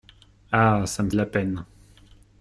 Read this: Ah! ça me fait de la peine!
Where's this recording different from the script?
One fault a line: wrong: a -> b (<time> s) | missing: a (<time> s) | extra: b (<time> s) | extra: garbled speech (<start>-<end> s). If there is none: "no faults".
missing: fait (1.1 s)